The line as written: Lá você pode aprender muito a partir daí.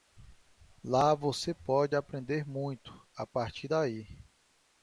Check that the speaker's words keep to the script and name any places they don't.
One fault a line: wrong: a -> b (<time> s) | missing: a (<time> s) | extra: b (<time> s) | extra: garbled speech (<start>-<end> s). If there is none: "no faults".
no faults